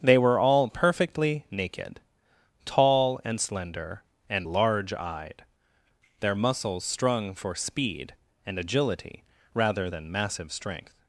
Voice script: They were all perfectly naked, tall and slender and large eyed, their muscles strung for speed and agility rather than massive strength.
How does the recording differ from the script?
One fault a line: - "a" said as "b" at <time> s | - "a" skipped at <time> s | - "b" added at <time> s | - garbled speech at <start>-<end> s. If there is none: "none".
none